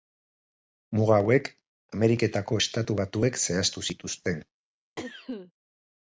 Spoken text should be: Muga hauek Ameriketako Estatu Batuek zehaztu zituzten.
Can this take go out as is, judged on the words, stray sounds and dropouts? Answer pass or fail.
fail